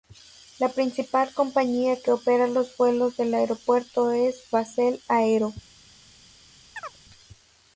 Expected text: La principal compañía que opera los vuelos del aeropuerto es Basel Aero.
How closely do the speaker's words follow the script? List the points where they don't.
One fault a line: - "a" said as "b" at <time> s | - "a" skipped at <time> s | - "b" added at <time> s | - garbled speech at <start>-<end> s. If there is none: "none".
none